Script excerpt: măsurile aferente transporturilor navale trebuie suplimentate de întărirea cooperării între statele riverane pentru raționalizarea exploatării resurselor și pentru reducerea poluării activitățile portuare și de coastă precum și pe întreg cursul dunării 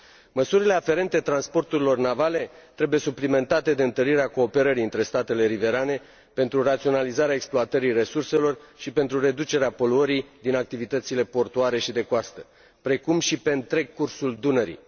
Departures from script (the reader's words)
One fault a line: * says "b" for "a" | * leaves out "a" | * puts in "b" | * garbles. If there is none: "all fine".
* puts in "din"